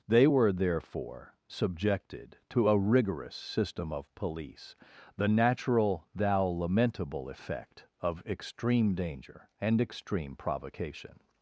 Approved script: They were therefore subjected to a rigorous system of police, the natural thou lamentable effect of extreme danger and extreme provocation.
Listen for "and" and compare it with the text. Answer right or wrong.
right